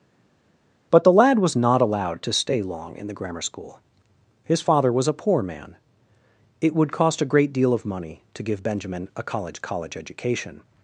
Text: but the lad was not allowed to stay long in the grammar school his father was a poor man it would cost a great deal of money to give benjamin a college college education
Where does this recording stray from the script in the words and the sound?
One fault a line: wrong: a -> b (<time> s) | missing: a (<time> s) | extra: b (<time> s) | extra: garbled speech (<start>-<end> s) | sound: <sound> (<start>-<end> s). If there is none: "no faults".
no faults